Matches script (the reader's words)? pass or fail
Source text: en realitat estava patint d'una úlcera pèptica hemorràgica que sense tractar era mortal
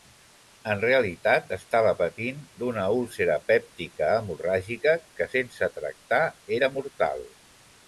pass